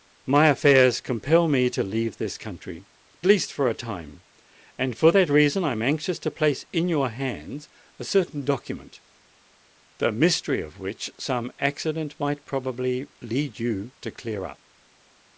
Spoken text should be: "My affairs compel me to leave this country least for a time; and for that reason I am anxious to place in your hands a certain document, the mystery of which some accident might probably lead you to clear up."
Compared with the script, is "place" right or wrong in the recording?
right